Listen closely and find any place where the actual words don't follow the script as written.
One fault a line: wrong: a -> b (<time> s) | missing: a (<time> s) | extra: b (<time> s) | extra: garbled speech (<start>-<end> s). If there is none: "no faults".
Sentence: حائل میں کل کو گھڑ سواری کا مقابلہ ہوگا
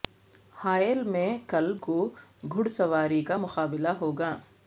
no faults